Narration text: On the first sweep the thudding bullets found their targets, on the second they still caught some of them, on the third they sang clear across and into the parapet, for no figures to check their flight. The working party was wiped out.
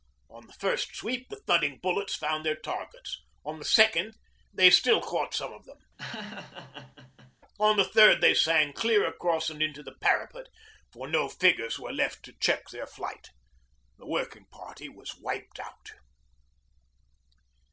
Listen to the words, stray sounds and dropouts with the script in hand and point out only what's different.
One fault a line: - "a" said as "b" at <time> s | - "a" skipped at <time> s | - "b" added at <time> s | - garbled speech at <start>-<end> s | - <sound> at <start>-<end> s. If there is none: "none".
- laugh at 6.0-7.4 s
- "were left" added at 11.8 s